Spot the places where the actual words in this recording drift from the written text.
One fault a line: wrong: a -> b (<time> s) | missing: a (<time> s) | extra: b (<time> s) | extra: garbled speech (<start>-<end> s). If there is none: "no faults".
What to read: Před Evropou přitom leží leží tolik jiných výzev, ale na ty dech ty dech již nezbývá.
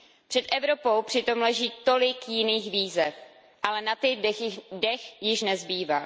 missing: leží (1.7 s)
missing: ty dech (5.2 s)